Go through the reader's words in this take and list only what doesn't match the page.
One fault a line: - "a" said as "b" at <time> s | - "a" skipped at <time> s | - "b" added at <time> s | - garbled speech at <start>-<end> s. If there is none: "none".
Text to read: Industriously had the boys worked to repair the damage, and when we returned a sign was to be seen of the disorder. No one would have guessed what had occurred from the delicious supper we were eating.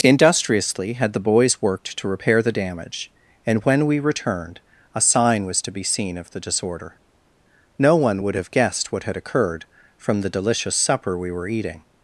none